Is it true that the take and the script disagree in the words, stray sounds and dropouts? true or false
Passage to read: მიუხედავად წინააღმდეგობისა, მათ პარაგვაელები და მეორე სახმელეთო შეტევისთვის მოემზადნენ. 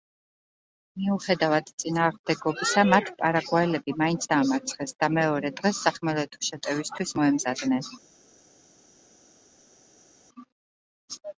true